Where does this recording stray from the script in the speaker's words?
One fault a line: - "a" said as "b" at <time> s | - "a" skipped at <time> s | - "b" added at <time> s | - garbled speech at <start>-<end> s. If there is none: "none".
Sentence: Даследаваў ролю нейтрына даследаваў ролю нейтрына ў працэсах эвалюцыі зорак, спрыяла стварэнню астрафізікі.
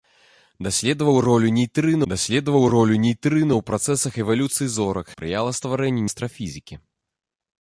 none